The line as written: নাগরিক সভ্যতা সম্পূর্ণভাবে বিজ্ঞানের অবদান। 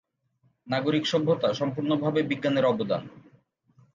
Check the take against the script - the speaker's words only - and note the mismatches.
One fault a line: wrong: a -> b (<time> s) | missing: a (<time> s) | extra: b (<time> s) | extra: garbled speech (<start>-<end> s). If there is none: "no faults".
no faults